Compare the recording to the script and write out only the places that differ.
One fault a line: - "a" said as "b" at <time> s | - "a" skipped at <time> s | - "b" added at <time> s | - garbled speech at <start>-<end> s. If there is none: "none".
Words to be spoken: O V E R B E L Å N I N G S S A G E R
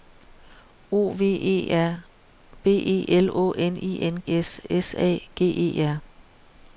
- "G" skipped at 4.2 s